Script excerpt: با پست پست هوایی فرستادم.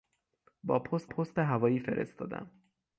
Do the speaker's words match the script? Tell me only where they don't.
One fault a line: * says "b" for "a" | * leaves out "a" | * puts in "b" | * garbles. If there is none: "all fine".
all fine